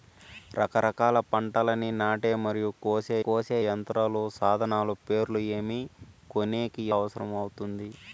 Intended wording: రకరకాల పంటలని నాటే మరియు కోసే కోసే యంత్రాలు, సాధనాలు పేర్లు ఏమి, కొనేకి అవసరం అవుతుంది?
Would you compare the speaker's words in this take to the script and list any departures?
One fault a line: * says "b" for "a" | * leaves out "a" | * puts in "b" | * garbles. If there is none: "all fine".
all fine